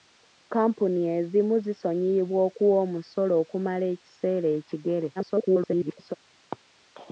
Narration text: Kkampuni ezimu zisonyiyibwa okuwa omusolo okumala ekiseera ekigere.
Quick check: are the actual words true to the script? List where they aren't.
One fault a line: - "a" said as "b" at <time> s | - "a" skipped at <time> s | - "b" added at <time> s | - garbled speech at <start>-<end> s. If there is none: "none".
- garbled speech at 5.2-6.2 s